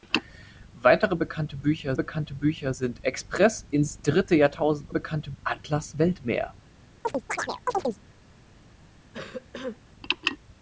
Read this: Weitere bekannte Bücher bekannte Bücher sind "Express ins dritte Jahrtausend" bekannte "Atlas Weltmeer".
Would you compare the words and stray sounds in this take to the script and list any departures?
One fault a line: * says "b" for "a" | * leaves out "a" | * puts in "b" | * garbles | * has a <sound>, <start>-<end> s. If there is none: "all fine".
* has a chirp, 7.0-8.0 s
* has a cough, 9.1-9.8 s